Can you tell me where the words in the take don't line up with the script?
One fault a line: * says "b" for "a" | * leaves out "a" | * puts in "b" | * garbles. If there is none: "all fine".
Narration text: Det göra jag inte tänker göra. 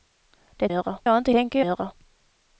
all fine